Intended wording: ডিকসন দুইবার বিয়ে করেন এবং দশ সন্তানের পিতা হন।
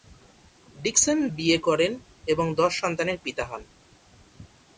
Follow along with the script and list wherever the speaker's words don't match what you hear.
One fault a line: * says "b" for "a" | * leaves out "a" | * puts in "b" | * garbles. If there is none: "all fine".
* leaves out "দুইবার"